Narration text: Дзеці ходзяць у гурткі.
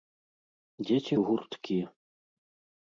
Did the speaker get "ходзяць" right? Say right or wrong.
wrong